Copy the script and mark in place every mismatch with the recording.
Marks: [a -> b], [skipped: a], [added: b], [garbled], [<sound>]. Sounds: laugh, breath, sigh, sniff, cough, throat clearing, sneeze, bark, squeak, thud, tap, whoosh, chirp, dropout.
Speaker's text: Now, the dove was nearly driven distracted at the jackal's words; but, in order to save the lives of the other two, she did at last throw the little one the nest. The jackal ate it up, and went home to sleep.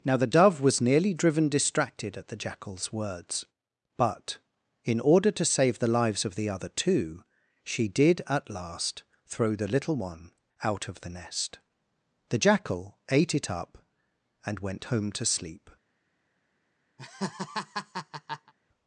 Now, the dove was nearly driven distracted at the jackal's words; but, in order to save the lives of the other two, she did at last throw the little one [added: out of] the nest. The jackal ate it up, and went home to sleep. [laugh]